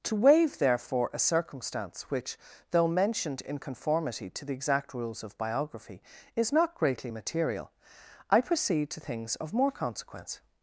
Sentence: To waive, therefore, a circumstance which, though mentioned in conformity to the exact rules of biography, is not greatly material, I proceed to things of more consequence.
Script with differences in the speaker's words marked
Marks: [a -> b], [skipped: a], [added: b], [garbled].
To waive, therefore, a circumstance which, though mentioned in conformity to the exact rules of biography, is not greatly material, I proceed to things of more consequence.